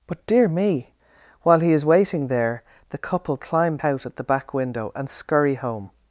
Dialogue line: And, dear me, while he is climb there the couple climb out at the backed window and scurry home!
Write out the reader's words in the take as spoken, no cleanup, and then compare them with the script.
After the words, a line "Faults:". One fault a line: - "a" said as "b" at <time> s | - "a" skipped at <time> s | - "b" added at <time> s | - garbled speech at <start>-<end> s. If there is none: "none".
But, dear me, while he is waiting there the couple climb out at the back window and scurry home!
Faults:
- "And" said as "But" at 0.1 s
- "climb" said as "waiting" at 1.9 s
- "backed" said as "back" at 4.2 s